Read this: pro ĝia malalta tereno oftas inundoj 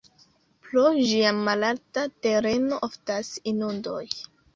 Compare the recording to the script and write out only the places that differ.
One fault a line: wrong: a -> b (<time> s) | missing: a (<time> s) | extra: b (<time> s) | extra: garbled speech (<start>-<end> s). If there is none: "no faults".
no faults